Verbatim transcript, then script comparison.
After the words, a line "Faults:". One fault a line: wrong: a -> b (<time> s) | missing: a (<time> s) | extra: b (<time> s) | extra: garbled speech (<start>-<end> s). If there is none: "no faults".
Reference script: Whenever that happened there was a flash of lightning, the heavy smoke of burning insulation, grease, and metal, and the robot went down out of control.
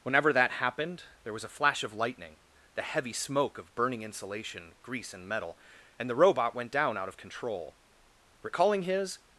Whenever that happened there was a flash of lightning, the heavy smoke of burning insulation, grease, and metal, and the robot went down out of control. Recalling his
Faults:
extra: Recalling his (8.4 s)